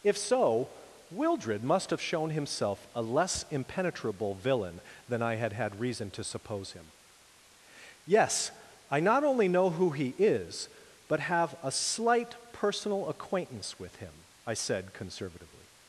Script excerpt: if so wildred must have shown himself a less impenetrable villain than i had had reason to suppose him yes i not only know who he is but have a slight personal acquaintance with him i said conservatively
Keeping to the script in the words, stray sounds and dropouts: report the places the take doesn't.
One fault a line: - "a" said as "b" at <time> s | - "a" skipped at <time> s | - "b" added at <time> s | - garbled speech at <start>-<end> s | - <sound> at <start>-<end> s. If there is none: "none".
none